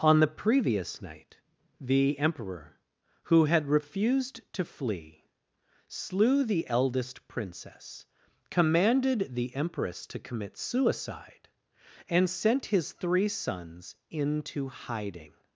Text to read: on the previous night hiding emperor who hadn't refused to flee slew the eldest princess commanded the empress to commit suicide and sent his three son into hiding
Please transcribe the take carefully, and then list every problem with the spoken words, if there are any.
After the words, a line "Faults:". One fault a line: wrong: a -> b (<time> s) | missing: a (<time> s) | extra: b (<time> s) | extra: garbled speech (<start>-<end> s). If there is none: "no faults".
on the previous night the emperor who had refused to flee slew the eldest princess commanded the empress to commit suicide and sent his three sons into hiding
Faults:
wrong: hiding -> the (1.8 s)
wrong: hadn't -> had (3.5 s)
wrong: son -> sons (13.3 s)